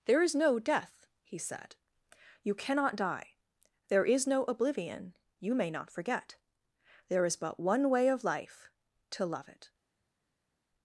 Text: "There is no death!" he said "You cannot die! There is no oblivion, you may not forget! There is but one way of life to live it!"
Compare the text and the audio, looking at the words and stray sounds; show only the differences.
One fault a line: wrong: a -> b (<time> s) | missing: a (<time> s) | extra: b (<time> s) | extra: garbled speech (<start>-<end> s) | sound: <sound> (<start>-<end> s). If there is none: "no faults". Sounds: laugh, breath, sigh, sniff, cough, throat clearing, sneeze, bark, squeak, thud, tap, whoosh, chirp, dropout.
wrong: live -> love (9.3 s)